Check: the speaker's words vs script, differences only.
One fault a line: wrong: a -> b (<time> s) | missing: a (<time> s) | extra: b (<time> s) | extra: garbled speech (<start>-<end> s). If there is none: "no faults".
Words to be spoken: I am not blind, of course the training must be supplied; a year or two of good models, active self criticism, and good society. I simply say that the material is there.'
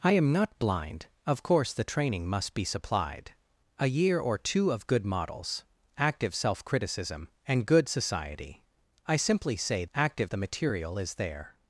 wrong: that -> active (9.9 s)